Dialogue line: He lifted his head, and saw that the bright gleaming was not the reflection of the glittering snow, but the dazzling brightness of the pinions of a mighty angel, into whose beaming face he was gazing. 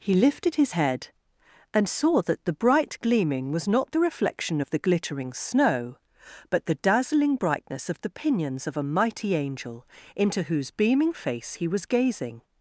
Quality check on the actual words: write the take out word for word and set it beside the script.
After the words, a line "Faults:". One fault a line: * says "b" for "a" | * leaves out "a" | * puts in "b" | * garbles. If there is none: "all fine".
He lifted his head, and saw that the bright gleaming was not the reflection of the glittering snow, but the dazzling brightness of the pinions of a mighty angel, into whose beaming face he was gazing.
Faults:
all fine